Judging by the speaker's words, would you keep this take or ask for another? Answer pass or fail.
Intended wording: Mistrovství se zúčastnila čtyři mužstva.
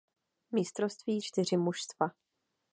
fail